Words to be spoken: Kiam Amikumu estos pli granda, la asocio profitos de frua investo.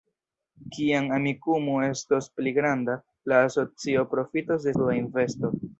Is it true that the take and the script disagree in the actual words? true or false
false